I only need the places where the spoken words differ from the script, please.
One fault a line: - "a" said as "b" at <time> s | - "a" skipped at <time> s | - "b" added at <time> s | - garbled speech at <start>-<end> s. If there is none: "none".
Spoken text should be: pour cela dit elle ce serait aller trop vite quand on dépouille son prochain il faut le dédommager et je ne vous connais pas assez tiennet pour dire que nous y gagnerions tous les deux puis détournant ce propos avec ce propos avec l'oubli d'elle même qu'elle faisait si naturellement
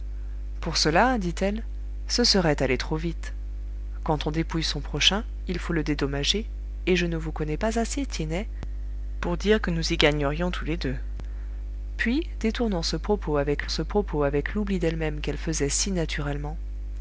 none